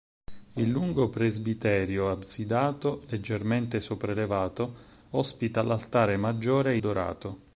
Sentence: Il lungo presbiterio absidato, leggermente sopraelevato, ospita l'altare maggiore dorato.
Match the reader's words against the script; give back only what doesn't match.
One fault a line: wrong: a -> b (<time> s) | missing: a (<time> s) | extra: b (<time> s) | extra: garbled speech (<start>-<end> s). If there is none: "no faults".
no faults